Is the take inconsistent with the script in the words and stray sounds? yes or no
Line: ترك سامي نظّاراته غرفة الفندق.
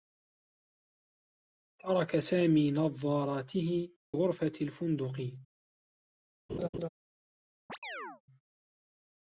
yes